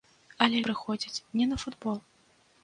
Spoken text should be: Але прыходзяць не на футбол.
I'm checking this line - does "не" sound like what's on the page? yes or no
yes